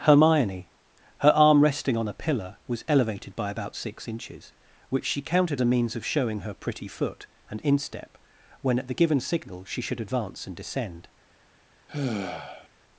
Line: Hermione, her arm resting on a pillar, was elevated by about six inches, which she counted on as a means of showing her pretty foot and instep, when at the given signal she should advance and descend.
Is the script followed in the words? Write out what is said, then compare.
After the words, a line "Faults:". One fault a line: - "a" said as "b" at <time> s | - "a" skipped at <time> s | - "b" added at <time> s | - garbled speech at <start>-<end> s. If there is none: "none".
Hermione, her arm resting on a pillar, was elevated by about six inches, which she counted a means of showing her pretty foot and instep, when at the given signal she should advance and descend.
Faults:
- "on as" skipped at 5.6 s